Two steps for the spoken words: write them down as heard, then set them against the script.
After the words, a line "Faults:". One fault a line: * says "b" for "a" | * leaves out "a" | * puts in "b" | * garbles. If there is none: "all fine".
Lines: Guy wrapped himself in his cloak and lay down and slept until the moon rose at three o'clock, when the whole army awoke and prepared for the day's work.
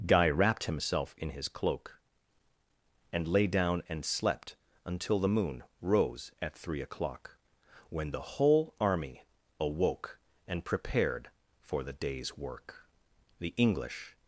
Guy wrapped himself in his cloak and lay down and slept until the moon rose at three o'clock, when the whole army awoke and prepared for the day's work. The English
Faults:
* puts in "The English"